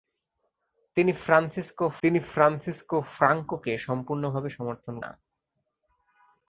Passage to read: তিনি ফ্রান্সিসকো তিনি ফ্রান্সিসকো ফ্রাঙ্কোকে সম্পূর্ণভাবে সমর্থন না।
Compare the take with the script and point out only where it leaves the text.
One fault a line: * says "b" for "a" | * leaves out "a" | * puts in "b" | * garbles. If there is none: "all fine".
all fine